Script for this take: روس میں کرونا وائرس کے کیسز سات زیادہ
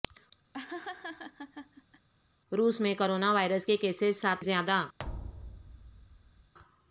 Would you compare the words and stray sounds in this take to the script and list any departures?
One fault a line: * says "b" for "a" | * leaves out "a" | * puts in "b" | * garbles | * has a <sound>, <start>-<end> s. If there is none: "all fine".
* has a laugh, 0.5-2.1 s
* has a thud, 5.0-6.5 s